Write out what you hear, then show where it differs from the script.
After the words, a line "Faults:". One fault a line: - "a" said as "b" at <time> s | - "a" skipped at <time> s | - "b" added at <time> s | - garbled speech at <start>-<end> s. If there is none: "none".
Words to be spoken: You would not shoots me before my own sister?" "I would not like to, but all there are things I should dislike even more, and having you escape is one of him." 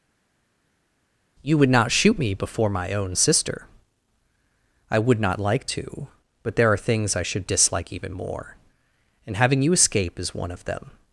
You would not shoot me before my own sister?" "I would not like to, but there are things I should dislike even more, and having you escape is one of them."
Faults:
- "shoots" said as "shoot" at 1.9 s
- "all" skipped at 6.6 s
- "him" said as "them" at 10.6 s